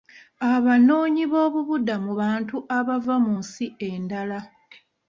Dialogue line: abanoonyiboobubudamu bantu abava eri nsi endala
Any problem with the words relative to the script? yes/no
yes